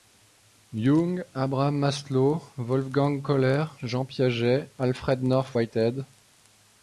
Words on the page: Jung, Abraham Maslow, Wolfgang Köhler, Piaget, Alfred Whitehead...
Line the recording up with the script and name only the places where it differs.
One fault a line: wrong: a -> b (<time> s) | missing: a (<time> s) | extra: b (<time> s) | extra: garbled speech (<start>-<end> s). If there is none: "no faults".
extra: Jean (3.8 s)
extra: North (5.2 s)